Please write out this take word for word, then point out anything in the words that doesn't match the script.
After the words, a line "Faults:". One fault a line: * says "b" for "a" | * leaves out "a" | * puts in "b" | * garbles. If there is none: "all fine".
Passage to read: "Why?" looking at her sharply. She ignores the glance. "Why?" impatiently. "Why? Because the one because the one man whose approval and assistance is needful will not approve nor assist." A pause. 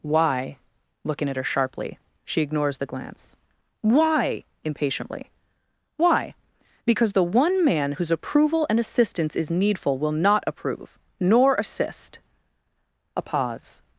"Why?" looking at her sharply. She ignores the glance. "Why?" impatiently. "Why? Because the one man whose approval and assistance is needful will not approve nor assist." A pause.
Faults:
* leaves out "because the one"